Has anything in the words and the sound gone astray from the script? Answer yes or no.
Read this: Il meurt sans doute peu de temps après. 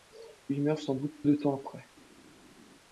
yes